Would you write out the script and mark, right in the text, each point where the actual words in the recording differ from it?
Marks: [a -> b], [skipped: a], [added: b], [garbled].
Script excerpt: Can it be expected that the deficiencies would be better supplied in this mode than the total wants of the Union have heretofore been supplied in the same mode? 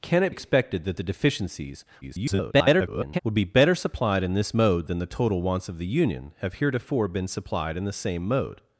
Can it [skipped: be] expected that the deficiencies [garbled] would be better supplied in this mode than the total wants of the Union have heretofore been supplied in the same mode?